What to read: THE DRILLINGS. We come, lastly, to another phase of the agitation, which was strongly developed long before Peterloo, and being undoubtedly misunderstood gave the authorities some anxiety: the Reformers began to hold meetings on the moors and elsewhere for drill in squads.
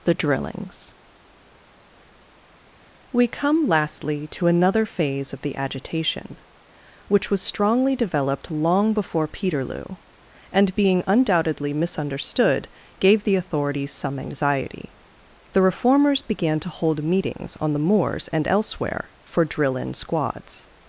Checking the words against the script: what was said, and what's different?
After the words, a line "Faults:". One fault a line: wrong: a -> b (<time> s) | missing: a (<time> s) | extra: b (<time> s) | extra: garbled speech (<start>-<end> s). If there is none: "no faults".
THE DRILLINGS. We come, lastly, to another phase of the agitation, which was strongly developed long before Peterloo, and being undoubtedly misunderstood gave the authorities some anxiety: the Reformers began to hold meetings on the moors and elsewhere for drill in squads.
Faults:
no faults